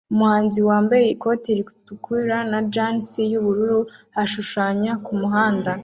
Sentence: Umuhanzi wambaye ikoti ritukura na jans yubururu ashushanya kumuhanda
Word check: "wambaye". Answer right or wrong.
right